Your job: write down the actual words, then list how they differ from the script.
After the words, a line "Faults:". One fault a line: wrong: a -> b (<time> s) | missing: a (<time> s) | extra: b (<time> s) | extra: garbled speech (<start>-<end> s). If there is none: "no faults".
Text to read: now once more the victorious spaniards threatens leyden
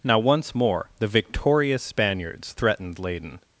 now once more the victorious spaniards threatened leyden
Faults:
wrong: threatens -> threatened (2.5 s)